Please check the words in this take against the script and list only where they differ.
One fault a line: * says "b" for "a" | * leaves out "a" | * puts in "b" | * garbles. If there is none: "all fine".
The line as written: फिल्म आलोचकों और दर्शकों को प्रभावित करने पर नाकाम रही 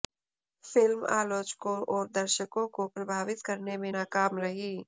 * says "में" for "पर"